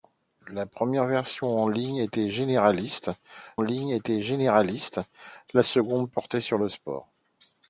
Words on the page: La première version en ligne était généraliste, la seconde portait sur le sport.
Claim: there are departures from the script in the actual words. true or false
true